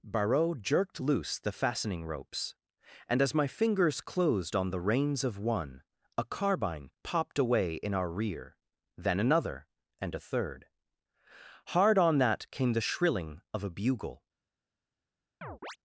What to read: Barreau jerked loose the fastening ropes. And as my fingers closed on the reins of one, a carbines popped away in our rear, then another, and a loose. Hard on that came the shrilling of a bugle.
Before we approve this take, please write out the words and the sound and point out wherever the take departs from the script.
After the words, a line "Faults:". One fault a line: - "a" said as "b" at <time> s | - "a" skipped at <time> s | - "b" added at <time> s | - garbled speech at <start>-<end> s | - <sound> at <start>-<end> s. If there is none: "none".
Barreau jerked loose the fastening ropes. And as my fingers closed on the reins of one, a carbine popped away in our rear, then another, and a third. Hard on that came the shrilling of a bugle.
Faults:
- "carbines" said as "carbine" at 6.2 s
- "loose" said as "third" at 10.2 s
- chirp at 15.4-15.8 s